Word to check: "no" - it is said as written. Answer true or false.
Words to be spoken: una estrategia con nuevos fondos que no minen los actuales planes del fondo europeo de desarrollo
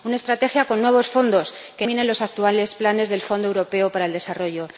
false